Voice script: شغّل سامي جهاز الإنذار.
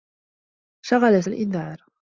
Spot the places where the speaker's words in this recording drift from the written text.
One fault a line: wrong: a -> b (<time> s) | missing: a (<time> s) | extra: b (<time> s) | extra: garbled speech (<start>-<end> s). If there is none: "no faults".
missing: سامي جهاز (1.2 s)